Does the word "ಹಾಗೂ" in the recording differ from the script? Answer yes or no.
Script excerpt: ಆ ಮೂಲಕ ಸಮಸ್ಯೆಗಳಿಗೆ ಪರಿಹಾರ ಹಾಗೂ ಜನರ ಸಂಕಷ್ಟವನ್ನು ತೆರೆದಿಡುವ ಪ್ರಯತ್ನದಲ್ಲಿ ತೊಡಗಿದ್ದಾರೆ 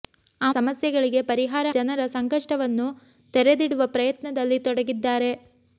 yes